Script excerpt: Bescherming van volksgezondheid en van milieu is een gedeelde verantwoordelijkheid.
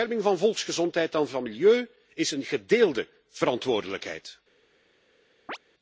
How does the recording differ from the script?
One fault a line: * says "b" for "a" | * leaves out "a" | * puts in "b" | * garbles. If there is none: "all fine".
all fine